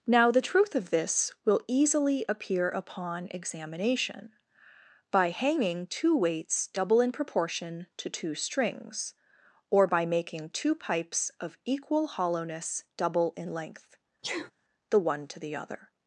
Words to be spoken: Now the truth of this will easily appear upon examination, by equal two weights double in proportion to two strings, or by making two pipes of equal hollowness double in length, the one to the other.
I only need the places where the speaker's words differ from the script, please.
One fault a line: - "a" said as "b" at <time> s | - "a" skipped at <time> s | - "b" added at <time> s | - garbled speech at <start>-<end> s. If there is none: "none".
- "equal" said as "hanging" at 5.3 s